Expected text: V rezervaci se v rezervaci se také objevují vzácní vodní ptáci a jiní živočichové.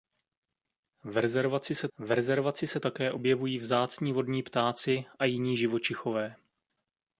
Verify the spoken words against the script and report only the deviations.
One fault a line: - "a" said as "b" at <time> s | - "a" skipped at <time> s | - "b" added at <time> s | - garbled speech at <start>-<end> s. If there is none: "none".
none